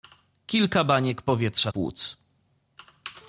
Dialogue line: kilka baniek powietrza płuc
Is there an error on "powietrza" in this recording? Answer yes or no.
no